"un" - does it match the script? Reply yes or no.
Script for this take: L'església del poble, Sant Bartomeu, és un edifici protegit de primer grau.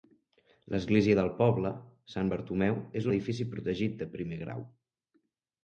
no